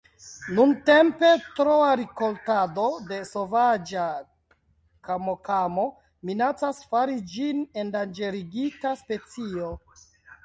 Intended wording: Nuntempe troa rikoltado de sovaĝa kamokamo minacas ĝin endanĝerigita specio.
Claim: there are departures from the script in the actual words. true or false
true